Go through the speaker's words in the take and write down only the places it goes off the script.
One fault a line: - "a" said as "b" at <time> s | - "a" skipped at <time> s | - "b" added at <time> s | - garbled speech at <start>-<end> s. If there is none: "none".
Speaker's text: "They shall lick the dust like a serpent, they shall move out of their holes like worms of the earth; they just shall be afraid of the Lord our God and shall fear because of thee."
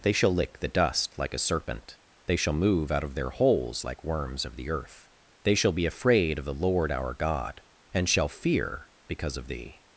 - "just" skipped at 5.5 s